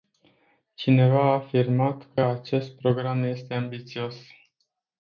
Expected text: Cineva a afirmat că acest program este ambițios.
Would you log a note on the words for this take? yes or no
no